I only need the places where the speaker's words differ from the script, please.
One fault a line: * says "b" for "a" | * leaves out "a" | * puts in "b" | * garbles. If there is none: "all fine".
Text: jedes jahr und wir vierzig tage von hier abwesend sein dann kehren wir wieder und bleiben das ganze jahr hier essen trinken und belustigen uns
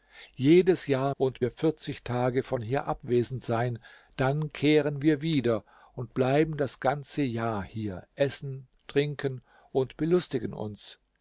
all fine